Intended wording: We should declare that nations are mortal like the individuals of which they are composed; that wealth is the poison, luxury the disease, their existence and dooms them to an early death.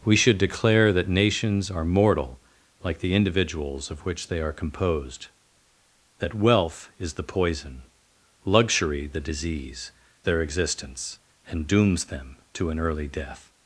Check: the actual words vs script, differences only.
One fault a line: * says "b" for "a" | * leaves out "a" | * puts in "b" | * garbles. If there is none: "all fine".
all fine